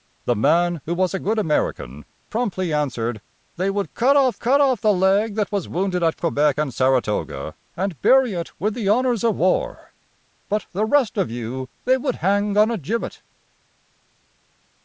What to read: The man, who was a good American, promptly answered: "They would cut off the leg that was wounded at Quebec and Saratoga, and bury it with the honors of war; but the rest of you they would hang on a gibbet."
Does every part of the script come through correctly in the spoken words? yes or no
no